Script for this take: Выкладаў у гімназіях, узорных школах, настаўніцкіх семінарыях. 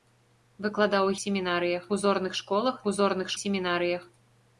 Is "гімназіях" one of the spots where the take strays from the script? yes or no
yes